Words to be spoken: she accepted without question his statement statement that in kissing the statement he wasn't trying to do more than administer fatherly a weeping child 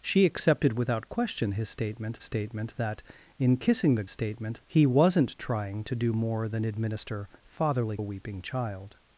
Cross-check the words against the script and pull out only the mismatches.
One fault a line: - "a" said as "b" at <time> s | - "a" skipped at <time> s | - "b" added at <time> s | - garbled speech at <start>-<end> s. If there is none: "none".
none